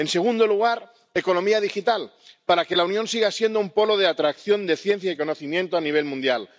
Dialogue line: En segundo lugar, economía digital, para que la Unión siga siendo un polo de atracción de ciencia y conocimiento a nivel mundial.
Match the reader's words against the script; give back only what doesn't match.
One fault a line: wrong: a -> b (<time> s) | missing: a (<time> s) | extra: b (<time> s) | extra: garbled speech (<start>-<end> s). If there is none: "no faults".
no faults